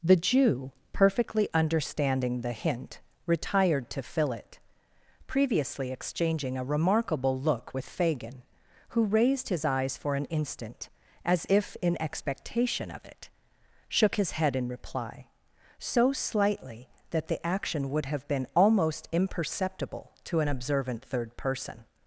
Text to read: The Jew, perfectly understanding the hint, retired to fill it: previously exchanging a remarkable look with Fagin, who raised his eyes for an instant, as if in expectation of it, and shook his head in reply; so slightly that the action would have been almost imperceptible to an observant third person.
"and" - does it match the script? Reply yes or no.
no